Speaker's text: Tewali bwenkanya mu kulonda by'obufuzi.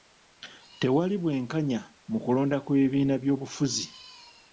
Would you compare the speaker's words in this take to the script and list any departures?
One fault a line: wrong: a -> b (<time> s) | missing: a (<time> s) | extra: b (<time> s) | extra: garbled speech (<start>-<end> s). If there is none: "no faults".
extra: kw'ebibiina (2.6 s)